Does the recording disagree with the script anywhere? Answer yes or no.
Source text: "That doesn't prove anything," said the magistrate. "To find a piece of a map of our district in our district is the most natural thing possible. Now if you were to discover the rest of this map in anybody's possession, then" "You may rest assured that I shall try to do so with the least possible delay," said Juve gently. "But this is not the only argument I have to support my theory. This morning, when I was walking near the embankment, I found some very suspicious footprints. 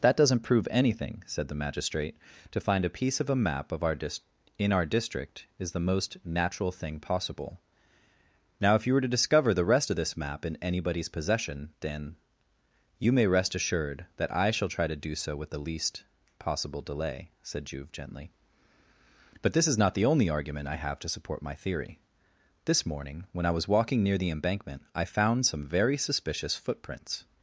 yes